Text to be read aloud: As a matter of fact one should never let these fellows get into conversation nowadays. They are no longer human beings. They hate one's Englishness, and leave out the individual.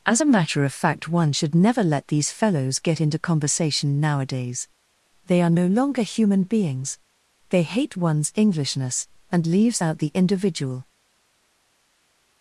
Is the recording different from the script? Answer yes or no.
yes